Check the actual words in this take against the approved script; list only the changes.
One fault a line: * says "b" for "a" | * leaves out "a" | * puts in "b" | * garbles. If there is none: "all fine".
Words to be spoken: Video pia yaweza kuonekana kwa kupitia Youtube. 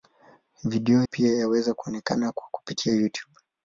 all fine